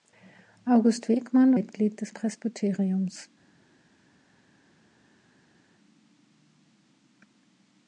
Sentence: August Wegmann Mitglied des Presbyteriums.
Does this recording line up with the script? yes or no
yes